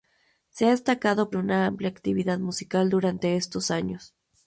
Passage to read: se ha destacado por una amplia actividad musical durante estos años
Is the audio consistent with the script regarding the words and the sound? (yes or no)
no